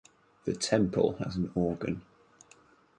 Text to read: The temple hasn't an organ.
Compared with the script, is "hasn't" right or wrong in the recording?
wrong